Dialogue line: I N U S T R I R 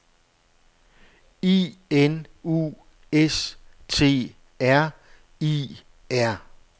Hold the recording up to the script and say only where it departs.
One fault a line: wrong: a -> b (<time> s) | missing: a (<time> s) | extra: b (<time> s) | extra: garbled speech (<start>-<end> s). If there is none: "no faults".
no faults